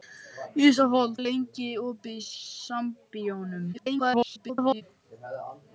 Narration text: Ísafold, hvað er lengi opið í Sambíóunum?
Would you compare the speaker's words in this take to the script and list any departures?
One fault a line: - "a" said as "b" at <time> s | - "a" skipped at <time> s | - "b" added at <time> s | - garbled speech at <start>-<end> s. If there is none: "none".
- "hvað" skipped at 1.1 s
- garbled speech at 3.7-4.8 s